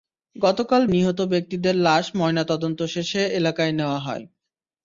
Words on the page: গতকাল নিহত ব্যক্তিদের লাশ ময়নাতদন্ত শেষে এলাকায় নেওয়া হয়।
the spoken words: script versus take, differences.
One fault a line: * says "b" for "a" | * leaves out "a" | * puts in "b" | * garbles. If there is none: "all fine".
all fine